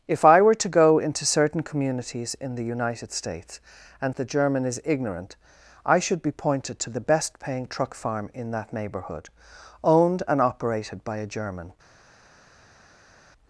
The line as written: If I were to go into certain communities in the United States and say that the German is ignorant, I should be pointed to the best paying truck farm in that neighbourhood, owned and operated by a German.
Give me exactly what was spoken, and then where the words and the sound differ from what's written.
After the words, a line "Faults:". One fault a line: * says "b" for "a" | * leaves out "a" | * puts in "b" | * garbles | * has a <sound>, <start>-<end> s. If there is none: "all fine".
If I were to go into certain communities in the United States and the German is ignorant, I should be pointed to the best paying truck farm in that neighbourhood, owned and operated by a German.
Faults:
* leaves out "say that"